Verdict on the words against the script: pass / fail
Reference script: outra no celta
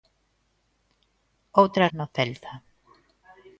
pass